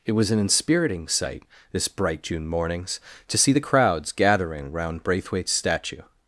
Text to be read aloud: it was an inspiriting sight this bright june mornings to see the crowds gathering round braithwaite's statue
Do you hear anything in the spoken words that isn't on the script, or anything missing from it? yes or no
no